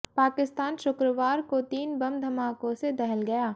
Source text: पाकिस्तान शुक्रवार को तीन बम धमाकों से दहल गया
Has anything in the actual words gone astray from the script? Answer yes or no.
no